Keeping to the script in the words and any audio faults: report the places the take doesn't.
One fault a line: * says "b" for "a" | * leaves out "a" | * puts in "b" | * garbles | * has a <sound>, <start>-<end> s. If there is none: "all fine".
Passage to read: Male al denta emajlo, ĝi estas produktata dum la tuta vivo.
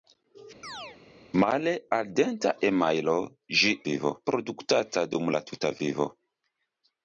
* has a chirp, 0.6-1.0 s
* says "vivo" for "estas"